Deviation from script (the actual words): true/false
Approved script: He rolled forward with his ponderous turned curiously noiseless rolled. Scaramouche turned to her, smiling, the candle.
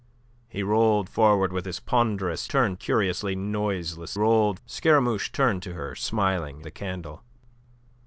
false